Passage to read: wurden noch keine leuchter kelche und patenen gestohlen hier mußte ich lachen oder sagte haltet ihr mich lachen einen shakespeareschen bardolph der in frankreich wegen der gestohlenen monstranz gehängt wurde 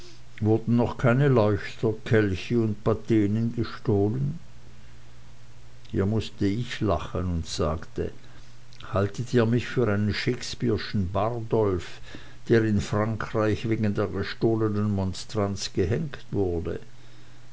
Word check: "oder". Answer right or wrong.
wrong